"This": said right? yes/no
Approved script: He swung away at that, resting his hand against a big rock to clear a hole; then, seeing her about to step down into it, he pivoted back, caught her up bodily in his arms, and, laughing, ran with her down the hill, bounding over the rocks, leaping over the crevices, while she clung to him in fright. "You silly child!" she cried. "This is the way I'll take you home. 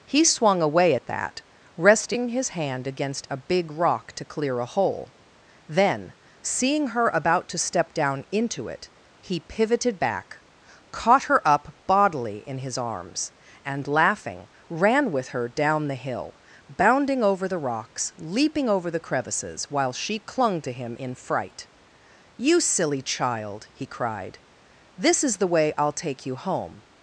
yes